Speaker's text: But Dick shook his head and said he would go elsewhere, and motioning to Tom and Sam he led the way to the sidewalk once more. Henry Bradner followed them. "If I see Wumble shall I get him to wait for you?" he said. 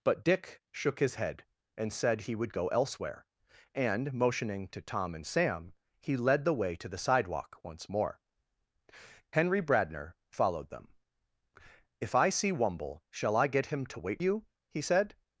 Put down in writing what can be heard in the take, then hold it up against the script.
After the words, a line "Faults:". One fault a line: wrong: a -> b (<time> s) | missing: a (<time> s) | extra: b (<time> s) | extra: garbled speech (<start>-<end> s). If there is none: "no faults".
But Dick shook his head and said he would go elsewhere, and motioning to Tom and Sam he led the way to the sidewalk once more. Henry Bradner followed them. "If I see Wumble shall I get him to wait you?" he said.
Faults:
missing: for (14.2 s)